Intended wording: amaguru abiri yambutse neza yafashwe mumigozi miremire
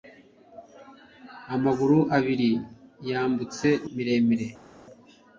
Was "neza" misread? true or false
true